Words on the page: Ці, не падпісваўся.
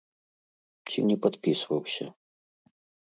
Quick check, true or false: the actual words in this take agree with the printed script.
true